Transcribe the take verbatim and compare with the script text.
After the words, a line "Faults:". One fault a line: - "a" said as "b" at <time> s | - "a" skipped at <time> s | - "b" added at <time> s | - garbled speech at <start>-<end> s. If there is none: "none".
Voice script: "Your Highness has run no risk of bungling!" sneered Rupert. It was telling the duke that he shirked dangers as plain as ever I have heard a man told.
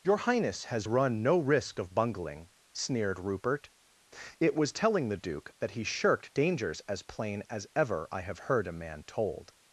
"Your Highness has run no risk of bungling!" sneered Rupert. It was telling the duke that he shirked dangers as plain as ever I have heard a man told.
Faults:
none